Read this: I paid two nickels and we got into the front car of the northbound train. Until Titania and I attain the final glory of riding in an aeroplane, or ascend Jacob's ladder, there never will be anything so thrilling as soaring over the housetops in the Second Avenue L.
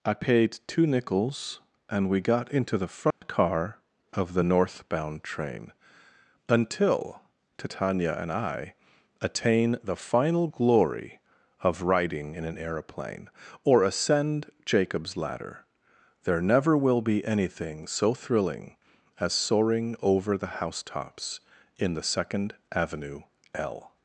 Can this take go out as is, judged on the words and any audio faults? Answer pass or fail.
fail